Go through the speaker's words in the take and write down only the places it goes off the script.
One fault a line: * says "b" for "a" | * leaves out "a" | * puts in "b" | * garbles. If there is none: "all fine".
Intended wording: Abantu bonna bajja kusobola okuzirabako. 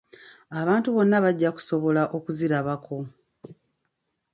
all fine